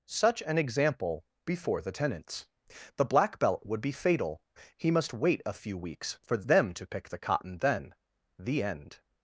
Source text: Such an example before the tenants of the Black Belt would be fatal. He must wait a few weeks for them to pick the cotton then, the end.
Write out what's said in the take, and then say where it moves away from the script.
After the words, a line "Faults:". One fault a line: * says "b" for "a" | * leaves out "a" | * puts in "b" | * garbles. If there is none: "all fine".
Such an example before the tenants the Black Belt would be fatal. He must wait a few weeks for them to pick the cotton then, the end.
Faults:
* leaves out "of"